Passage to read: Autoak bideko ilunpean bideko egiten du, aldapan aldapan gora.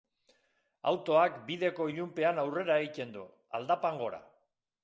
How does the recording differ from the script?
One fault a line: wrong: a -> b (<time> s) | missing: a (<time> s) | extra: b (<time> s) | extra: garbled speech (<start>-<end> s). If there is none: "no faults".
wrong: bideko -> aurrera (2.5 s)
missing: aldapan (4.0 s)